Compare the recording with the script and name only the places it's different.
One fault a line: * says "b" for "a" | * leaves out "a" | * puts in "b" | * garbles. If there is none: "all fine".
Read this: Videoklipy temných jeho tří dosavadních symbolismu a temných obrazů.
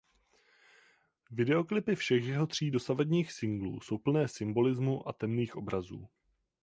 * says "všech" for "temných"
* puts in "singlů jsou plné"